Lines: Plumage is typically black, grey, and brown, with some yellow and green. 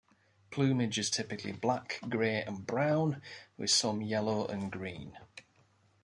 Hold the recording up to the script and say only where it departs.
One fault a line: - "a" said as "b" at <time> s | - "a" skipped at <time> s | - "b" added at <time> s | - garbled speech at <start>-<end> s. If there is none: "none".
none